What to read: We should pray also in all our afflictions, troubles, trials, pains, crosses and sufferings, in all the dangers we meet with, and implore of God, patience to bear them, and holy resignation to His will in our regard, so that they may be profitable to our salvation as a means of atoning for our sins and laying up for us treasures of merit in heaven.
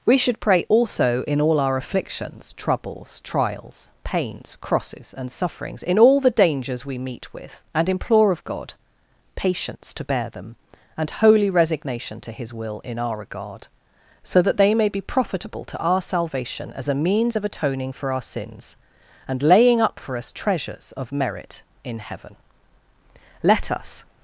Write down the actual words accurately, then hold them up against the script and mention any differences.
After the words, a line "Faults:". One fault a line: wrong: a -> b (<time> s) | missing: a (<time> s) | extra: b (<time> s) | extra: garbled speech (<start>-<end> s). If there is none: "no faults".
We should pray also in all our afflictions, troubles, trials, pains, crosses and sufferings, in all the dangers we meet with, and implore of God, patience to bear them, and holy resignation to His will in our regard, so that they may be profitable to our salvation as a means of atoning for our sins and laying up for us treasures of merit in heaven. Let us
Faults:
extra: Let us (23.4 s)